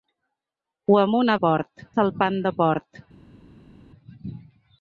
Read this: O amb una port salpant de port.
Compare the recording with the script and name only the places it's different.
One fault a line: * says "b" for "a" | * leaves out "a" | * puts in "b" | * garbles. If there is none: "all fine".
all fine